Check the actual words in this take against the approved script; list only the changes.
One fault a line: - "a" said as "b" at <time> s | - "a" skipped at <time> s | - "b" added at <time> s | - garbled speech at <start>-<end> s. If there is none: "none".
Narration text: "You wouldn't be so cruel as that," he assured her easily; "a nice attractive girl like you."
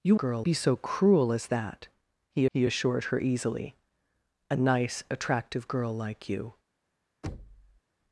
- "wouldn't" said as "girl" at 0.1 s
- "he" added at 2.5 s